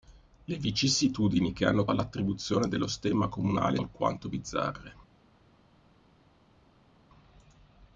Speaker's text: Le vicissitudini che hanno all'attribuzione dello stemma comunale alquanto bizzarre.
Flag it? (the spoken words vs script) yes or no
no